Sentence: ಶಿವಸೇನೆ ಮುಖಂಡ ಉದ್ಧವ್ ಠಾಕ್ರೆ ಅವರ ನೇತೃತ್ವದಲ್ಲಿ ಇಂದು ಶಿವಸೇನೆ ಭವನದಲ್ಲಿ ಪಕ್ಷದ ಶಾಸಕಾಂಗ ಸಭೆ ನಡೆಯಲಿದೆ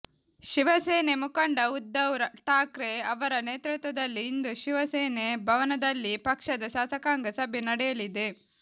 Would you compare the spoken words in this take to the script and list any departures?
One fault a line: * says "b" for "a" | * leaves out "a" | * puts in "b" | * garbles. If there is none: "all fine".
all fine